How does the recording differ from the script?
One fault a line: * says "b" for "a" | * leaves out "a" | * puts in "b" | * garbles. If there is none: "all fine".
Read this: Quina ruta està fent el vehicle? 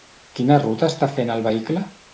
all fine